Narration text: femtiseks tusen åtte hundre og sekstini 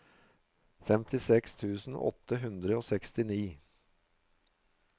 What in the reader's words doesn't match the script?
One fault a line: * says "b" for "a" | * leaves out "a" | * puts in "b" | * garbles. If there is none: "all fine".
all fine